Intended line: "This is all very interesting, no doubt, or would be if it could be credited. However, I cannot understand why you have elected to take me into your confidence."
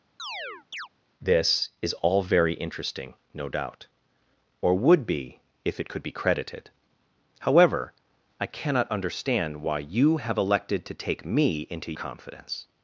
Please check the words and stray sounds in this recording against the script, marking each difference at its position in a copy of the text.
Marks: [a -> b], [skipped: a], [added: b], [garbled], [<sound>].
[chirp] "This is all very interesting, no doubt, or would be if it could be credited. However, I cannot understand why you have elected to take me into [skipped: your] confidence."